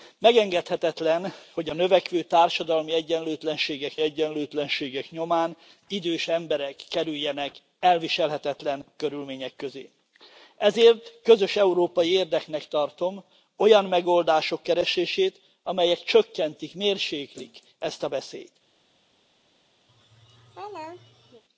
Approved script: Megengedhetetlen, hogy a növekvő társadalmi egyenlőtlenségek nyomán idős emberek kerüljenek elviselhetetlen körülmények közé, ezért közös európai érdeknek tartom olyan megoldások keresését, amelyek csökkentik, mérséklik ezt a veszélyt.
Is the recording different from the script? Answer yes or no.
yes